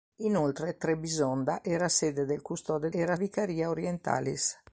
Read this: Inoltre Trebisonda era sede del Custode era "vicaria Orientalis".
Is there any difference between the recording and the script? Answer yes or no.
no